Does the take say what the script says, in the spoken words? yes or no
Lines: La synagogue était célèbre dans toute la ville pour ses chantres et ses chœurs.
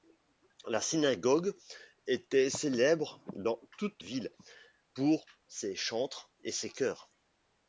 no